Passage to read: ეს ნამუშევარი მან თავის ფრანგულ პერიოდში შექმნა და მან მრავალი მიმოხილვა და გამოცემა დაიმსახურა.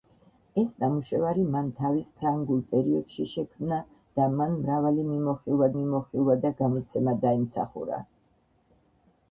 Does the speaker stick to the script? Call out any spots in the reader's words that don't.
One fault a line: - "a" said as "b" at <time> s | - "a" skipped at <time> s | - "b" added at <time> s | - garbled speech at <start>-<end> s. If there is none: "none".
- "მიმოხილვა" added at 5.8 s